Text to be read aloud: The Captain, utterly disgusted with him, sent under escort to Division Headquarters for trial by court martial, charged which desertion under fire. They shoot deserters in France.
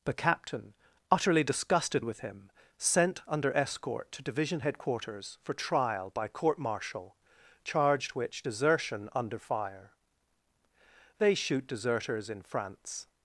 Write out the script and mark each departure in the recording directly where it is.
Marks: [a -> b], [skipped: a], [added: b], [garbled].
The Captain, utterly disgusted with him, sent under escort to Division Headquarters for trial by court martial, charged which desertion under fire. They shoot deserters in France.